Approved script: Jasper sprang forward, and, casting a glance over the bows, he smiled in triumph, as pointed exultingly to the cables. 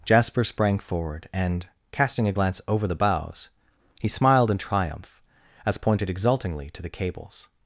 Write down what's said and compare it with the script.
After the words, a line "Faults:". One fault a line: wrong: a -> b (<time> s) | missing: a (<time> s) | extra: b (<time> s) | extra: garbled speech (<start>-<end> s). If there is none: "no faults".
Jasper sprang forward, and, casting a glance over the bows, he smiled in triumph, as pointed exultingly to the cables.
Faults:
no faults